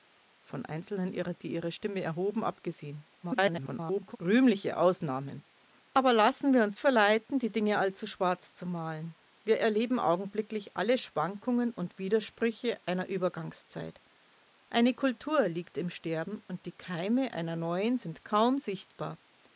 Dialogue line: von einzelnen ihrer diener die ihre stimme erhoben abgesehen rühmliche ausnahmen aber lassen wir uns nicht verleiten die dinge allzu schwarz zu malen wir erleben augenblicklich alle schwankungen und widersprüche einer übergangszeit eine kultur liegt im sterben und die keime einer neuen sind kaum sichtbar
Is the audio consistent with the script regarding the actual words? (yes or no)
no